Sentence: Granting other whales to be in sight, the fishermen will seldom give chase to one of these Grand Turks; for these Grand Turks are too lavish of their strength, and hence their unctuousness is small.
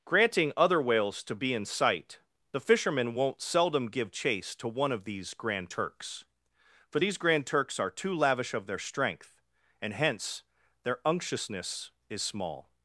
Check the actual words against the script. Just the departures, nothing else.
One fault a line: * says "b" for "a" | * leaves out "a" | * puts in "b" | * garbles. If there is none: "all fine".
* says "won't" for "will"